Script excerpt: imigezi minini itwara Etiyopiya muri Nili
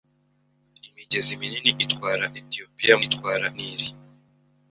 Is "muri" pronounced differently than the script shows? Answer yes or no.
yes